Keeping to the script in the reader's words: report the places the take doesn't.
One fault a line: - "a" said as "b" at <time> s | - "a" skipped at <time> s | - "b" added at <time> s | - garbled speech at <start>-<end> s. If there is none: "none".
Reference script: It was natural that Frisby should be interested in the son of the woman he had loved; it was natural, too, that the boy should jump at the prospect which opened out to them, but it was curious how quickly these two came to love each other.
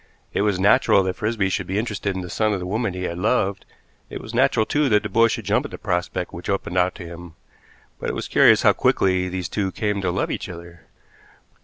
- "them" said as "him" at 7.0 s